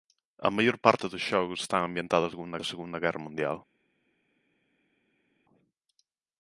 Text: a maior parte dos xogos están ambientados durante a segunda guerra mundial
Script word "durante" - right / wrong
wrong